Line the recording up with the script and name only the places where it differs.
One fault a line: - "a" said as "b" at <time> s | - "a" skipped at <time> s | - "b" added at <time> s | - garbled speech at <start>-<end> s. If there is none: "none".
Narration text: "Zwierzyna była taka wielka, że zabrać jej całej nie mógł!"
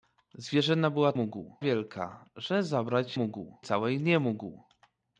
- "taka" said as "mógł" at 1.1 s
- "jej" said as "mógł" at 3.1 s